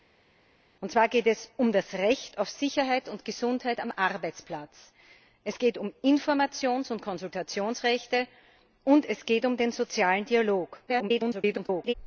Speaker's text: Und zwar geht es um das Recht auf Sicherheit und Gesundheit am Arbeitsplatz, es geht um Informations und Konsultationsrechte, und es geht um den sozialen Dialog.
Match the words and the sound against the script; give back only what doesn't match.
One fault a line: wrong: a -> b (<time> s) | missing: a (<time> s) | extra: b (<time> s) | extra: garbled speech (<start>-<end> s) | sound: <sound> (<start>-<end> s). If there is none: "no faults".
extra: garbled speech (10.9-11.9 s)